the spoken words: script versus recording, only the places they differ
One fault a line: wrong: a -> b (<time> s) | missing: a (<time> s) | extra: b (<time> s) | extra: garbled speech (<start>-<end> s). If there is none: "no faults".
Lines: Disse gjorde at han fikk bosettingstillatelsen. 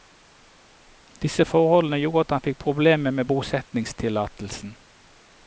extra: forholdene (1.4 s)
extra: problemer med (2.6 s)